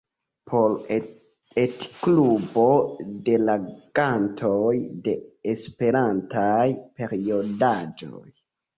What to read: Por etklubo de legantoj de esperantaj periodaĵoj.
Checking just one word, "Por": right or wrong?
right